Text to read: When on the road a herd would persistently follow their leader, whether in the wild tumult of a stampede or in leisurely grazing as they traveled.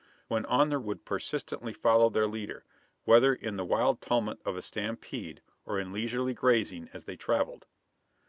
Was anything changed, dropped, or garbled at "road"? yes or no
yes